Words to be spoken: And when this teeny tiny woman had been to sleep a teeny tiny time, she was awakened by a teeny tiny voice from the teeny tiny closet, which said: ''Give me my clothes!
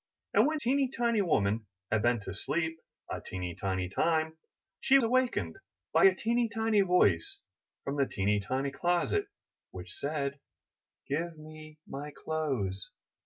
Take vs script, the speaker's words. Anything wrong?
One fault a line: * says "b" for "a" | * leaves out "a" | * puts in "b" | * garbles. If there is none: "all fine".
* leaves out "this"
* leaves out "was"